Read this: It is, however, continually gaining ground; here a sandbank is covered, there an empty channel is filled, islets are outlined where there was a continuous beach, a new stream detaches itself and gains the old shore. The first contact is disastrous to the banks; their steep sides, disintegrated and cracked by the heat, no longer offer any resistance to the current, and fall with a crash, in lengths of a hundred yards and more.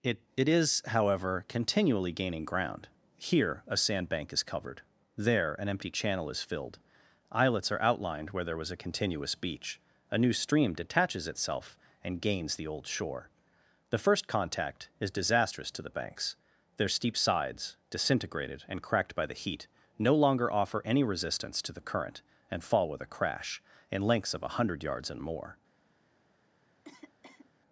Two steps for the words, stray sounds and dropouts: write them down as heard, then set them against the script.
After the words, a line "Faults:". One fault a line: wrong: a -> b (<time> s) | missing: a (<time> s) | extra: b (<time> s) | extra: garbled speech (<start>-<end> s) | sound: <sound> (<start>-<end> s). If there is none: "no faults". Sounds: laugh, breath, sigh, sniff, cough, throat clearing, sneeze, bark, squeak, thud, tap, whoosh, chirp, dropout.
It it is, however, continually gaining ground; here a sandbank is covered, there an empty channel is filled, islets are outlined where there was a continuous beach, a new stream detaches itself and gains the old shore. The first contact is disastrous to the banks; their steep sides, disintegrated and cracked by the heat, no longer offer any resistance to the current, and fall with a crash, in lengths of a hundred yards and more.
Faults:
extra: it (0.3 s)
sound: cough (26.8-27.5 s)